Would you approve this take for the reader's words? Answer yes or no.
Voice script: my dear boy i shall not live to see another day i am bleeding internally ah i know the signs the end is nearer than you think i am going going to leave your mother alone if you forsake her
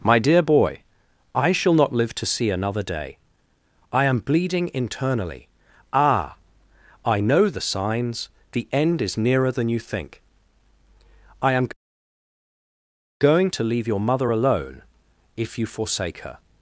no